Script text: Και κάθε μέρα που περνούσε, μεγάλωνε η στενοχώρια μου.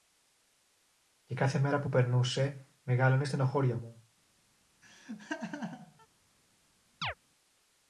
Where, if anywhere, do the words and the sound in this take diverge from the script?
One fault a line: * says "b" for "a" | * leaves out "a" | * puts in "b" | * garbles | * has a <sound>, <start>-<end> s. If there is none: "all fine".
* has a laugh, 4.8-6.1 s
* has a chirp, 7.0-7.1 s